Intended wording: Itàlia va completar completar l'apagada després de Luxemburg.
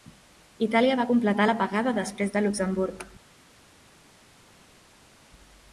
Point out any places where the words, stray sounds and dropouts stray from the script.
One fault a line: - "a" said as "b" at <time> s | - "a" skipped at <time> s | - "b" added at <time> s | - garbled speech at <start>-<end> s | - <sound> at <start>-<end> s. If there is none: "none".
- "completar" skipped at 1.5 s